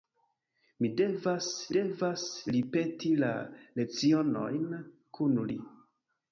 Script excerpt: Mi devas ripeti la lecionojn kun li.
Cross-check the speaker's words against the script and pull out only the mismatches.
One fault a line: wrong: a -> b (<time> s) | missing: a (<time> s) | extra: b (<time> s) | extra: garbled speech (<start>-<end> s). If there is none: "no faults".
extra: devas (1.8 s)